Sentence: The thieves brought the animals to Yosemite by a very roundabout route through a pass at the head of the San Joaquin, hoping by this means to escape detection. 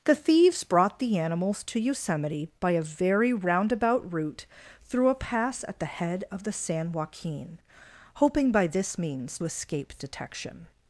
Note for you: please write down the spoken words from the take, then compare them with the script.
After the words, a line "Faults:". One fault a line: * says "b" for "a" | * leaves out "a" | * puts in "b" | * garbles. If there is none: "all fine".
The thieves brought the animals to Yosemite by a very roundabout route through a pass at the head of the San Joaquin, hoping by this means escape detection.
Faults:
* leaves out "to"